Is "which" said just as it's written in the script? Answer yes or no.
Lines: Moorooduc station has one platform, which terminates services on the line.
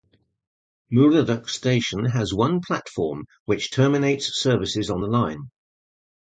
yes